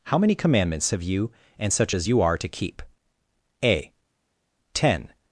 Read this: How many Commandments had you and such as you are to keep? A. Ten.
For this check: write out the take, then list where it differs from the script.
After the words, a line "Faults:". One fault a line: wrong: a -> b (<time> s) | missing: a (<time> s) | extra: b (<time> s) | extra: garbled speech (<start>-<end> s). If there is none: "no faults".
How many Commandments have you and such as you are to keep? A. Ten.
Faults:
wrong: had -> have (0.9 s)